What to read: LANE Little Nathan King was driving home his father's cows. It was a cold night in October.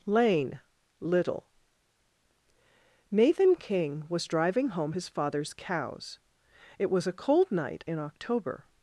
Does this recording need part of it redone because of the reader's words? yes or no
no